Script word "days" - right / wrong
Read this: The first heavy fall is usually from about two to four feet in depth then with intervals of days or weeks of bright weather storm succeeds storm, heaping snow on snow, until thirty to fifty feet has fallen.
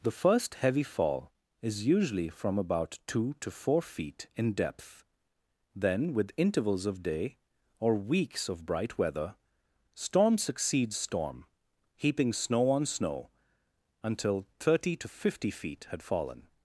wrong